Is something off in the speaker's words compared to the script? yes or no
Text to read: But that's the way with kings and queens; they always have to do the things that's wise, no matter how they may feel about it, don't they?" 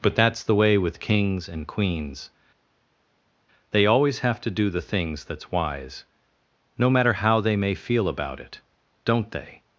no